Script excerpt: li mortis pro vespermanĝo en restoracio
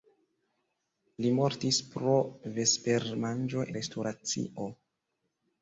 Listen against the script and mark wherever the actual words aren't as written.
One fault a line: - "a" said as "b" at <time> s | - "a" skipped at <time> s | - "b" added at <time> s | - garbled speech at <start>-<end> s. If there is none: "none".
- "en" skipped at 3.6 s